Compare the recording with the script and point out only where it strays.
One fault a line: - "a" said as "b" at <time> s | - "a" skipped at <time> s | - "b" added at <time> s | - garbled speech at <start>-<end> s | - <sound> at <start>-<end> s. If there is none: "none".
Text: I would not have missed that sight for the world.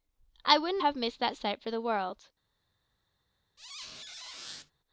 - "not" skipped at 0.8 s
- squeak at 3.6-4.7 s